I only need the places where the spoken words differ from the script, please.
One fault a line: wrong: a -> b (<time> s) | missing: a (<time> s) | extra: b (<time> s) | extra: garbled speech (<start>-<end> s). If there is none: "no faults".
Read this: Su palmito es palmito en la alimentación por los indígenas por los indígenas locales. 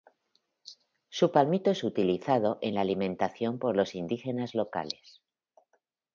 wrong: palmito -> utilizado (1.8 s)
missing: por los indígenas (4.5 s)